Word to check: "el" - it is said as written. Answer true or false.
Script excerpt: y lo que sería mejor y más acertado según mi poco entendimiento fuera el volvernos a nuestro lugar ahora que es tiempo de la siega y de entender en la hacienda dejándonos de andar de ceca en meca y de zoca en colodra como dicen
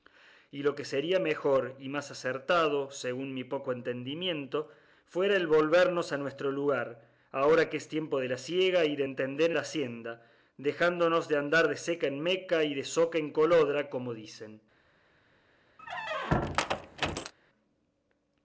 true